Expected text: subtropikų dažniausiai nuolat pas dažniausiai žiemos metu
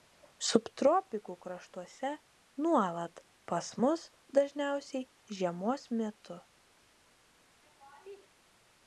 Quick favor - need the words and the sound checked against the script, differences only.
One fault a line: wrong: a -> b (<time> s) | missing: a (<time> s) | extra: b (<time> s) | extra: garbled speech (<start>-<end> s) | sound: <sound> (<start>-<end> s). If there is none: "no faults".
wrong: dažniausiai -> kraštuose (1.4 s)
extra: mus (3.9 s)
sound: laugh (7.6-8.3 s)